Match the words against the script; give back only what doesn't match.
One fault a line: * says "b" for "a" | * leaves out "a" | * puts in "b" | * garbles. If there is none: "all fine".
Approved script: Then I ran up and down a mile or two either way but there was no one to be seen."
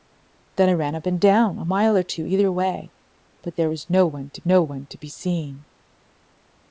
* puts in "no one to"